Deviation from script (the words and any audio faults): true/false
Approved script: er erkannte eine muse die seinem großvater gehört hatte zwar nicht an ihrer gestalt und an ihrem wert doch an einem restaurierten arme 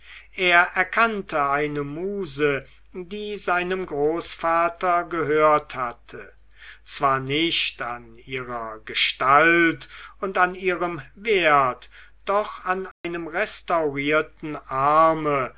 true